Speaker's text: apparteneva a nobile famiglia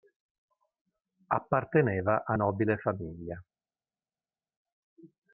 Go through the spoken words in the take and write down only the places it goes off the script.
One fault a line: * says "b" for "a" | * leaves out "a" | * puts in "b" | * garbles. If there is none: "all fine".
all fine